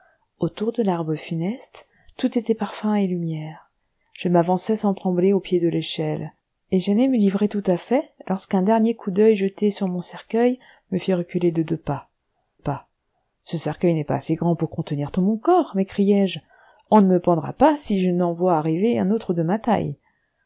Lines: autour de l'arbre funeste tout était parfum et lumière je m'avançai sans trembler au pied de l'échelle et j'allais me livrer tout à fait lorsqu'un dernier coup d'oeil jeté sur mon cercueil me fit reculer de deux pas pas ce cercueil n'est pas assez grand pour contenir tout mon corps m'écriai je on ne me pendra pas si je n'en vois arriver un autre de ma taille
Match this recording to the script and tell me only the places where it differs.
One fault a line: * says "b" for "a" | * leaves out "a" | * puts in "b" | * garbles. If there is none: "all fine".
all fine